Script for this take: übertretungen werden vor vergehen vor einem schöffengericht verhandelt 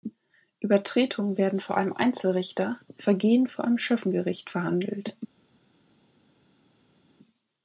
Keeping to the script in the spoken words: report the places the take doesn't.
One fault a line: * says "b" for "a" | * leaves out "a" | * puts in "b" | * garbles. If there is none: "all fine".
* puts in "einem einzelrichter"